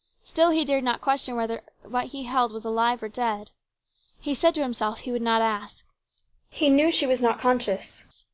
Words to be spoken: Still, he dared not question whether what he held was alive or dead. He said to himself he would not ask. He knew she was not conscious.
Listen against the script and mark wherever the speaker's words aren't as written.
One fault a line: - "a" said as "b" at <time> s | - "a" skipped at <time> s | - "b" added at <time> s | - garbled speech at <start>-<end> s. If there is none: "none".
none